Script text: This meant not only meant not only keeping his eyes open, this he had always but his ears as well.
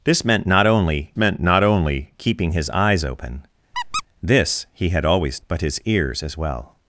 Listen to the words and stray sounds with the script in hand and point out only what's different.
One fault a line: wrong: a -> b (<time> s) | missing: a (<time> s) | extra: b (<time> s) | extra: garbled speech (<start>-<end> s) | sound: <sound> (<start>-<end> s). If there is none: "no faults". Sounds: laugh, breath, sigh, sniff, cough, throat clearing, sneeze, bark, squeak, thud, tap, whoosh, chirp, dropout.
sound: squeak (3.7-4.0 s)